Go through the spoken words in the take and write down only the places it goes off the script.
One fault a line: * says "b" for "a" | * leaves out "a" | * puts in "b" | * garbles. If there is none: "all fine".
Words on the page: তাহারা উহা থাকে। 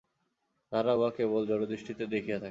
* puts in "কেবল জড়দৃষ্টিতে দেখিয়া"